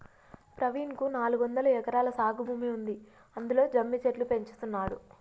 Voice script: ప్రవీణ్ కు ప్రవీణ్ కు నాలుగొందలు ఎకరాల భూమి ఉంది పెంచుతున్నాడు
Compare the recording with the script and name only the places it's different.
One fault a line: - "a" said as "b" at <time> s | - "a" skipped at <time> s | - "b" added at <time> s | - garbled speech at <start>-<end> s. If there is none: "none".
- "ప్రవీణ్ కు" skipped at 1.1 s
- "సాగు" added at 2.2 s
- "అందులో జమ్మి చెట్లు" added at 3.4 s